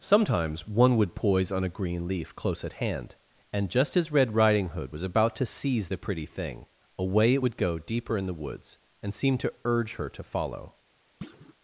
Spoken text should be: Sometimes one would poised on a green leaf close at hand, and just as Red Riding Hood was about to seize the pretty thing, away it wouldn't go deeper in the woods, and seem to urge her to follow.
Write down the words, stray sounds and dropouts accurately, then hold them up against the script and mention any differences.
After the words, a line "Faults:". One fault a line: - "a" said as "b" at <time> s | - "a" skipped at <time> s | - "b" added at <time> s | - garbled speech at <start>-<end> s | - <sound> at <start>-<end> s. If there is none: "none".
Sometimes one would poise on a green leaf close at hand, and just as Red Riding Hood was about to seize the pretty thing, away it would go deeper in the woods, and seem to urge her to follow.
Faults:
- "poised" said as "poise" at 1.1 s
- "wouldn't" said as "would" at 7.4 s
- thud at 11.2-11.5 s